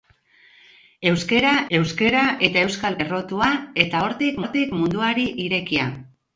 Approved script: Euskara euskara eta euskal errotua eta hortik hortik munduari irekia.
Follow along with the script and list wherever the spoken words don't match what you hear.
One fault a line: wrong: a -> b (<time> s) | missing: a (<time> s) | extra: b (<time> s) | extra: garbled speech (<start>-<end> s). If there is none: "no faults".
no faults